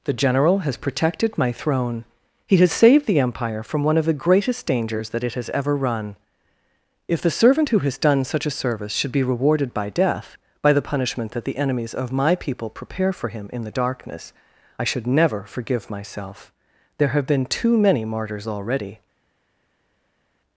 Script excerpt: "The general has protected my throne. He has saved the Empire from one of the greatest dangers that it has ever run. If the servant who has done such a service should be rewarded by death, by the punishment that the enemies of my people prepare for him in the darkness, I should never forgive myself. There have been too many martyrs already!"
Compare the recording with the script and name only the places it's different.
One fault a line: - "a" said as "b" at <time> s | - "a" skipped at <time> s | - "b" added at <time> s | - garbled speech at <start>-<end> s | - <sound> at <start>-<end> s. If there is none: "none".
none